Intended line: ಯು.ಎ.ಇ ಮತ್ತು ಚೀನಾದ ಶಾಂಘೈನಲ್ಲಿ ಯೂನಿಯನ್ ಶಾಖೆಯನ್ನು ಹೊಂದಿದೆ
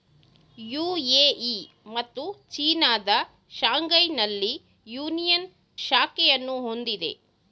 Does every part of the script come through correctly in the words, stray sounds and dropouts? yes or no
yes